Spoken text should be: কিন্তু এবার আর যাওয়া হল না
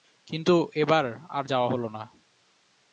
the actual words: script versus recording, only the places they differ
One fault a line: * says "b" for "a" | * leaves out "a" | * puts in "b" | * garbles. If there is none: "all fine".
all fine